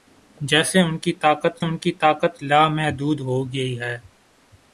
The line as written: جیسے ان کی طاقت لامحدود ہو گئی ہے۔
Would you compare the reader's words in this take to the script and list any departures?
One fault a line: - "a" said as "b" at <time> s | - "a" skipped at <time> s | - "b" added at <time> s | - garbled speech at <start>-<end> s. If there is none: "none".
- "ان کی طاقت" added at 1.6 s